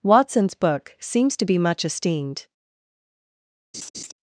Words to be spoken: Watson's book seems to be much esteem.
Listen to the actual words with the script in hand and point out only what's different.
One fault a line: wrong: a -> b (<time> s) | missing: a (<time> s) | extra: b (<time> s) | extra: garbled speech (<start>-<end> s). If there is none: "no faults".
wrong: esteem -> esteemed (1.9 s)